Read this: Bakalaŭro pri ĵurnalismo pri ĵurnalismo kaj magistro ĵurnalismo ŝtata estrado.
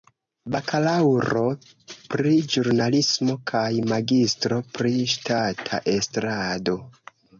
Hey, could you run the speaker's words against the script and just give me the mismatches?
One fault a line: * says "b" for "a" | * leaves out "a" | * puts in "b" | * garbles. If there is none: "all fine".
* leaves out "pri ĵurnalismo"
* says "pri" for "ĵurnalismo"